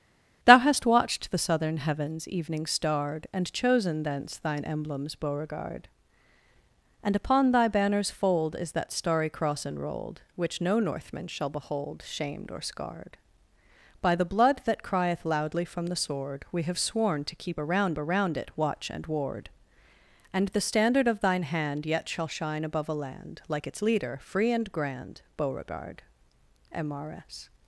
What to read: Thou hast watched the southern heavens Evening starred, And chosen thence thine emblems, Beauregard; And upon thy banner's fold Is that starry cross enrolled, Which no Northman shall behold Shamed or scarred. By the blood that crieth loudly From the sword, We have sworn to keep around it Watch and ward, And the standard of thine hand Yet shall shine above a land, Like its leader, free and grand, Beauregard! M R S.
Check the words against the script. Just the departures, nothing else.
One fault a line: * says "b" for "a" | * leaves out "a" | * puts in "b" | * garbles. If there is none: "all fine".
* puts in "around"